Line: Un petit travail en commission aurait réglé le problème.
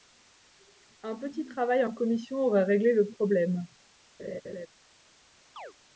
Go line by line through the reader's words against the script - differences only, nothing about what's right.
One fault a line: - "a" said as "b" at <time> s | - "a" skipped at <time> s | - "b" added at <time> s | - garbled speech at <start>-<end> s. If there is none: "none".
none